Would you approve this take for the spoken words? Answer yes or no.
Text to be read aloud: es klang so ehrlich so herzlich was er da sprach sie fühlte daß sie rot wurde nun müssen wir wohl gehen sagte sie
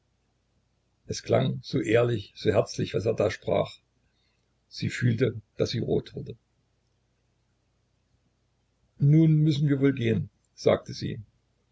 yes